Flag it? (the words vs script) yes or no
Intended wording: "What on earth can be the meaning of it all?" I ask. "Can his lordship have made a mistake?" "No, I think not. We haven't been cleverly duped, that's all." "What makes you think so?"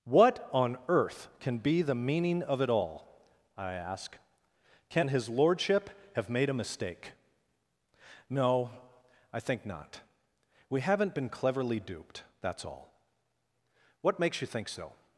no